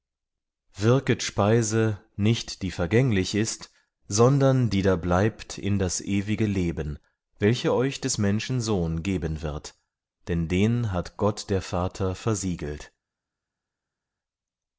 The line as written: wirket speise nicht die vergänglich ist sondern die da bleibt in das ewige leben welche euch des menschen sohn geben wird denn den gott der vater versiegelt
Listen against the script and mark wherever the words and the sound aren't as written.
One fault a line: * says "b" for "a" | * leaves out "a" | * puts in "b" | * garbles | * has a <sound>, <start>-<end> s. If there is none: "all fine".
* puts in "hat"